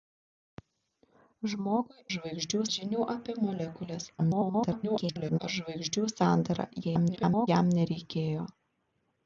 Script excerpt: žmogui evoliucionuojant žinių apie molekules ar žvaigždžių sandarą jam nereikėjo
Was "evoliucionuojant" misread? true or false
true